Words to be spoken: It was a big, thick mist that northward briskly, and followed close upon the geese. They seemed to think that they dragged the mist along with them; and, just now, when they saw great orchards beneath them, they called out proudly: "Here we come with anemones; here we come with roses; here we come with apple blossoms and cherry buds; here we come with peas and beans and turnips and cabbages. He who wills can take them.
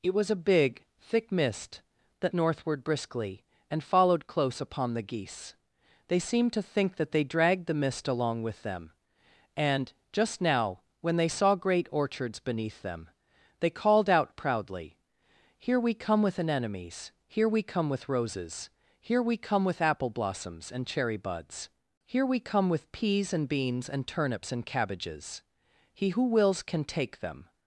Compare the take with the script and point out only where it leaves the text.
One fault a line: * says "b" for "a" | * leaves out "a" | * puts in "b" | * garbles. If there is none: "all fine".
all fine